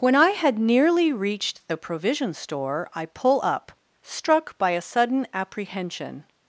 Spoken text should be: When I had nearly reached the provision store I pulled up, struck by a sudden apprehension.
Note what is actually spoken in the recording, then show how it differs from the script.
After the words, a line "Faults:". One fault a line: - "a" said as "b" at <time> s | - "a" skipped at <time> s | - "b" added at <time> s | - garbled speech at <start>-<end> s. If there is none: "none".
When I had nearly reached the provision store I pull up, struck by a sudden apprehension.
Faults:
- "pulled" said as "pull" at 3.0 s